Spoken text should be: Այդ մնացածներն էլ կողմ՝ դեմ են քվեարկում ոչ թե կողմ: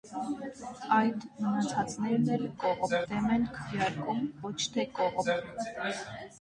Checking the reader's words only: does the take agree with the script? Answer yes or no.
yes